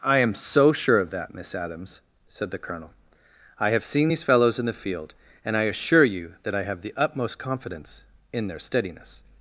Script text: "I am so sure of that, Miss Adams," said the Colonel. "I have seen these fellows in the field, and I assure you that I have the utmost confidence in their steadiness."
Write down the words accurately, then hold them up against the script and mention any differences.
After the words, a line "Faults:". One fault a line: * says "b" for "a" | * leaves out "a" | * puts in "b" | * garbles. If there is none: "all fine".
"I am so sure of that, Miss Adams," said the Colonel. "I have seen these fellows in the field, and I assure you that I have the utmost confidence in their steadiness."
Faults:
all fine